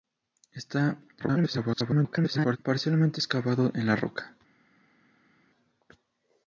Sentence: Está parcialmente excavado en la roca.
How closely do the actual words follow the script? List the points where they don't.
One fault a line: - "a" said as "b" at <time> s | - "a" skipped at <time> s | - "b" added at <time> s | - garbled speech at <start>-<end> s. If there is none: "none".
- garbled speech at 1.2-2.6 s